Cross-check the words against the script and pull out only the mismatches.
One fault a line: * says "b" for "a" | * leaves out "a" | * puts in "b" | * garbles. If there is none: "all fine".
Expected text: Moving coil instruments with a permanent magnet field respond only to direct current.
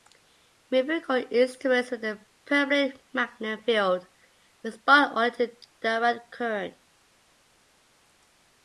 all fine